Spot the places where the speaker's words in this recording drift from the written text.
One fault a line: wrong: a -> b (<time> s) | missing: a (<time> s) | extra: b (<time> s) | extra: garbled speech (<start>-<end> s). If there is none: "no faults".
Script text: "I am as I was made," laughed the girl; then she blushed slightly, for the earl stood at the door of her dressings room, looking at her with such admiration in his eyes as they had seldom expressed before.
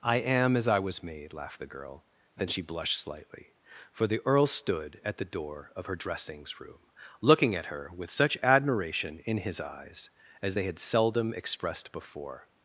no faults